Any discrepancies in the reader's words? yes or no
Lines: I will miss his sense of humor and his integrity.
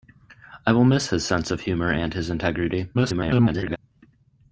yes